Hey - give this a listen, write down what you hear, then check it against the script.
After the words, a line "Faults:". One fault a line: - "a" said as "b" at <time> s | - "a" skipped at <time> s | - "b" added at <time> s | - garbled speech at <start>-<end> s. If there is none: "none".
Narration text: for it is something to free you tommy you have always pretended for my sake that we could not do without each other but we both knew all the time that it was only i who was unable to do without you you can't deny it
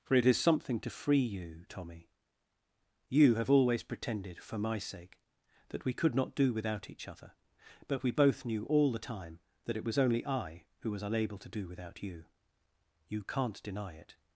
for it is something to free you tommy you have always pretended for my sake that we could not do without each other but we both knew all the time that it was only i who was unable to do without you you can't deny it
Faults:
none